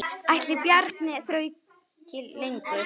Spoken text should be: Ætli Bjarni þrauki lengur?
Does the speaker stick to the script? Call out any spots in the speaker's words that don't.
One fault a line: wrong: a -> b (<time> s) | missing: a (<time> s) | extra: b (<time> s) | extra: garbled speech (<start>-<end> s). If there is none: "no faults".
no faults